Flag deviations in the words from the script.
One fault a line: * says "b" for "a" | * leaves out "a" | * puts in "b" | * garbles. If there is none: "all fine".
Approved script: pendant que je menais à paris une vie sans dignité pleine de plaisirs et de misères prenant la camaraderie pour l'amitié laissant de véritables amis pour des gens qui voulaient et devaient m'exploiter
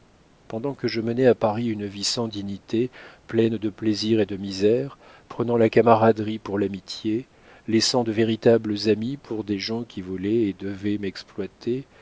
all fine